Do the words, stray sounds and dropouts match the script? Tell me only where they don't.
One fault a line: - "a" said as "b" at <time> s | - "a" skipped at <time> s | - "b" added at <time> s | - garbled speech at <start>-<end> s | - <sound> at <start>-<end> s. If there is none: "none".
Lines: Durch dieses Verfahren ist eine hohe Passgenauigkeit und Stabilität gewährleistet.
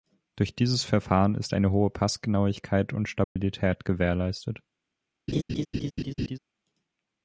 - dropout at 3.2-3.4 s
- laugh at 5.3-6.4 s